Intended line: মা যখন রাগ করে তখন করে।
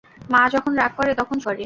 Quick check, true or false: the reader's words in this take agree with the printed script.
true